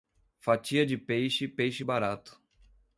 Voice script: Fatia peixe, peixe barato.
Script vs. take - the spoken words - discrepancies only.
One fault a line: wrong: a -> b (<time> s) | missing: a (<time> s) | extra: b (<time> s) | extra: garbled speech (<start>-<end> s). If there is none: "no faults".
extra: de (0.8 s)